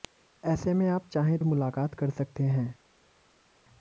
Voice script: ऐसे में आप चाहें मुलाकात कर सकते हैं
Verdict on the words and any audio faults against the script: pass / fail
pass